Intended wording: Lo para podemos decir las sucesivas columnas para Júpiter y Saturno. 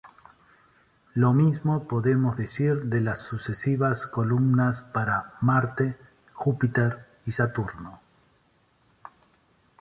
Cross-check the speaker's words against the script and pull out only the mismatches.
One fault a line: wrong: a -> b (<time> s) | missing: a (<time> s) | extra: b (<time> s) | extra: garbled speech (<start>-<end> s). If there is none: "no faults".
wrong: para -> mismo (1.3 s)
extra: de (2.8 s)
extra: Marte (5.4 s)